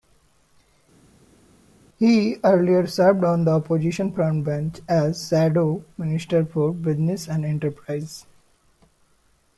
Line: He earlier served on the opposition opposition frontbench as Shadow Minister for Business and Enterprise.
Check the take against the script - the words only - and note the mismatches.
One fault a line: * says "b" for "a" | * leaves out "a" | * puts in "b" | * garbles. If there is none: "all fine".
* leaves out "opposition"